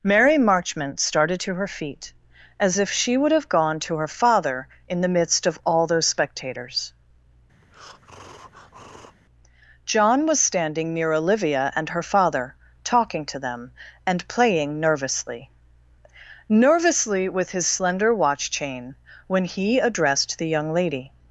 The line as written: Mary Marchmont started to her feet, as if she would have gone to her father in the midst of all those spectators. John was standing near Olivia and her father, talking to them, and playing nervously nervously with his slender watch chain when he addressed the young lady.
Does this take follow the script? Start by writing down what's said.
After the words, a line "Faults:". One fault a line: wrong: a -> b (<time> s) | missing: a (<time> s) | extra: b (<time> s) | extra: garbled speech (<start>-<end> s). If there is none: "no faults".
Mary Marchmont started to her feet, as if she would have gone to her father in the midst of all those spectators. John was standing near Olivia and her father, talking to them, and playing nervously nervously with his slender watch chain when he addressed the young lady.
Faults:
no faults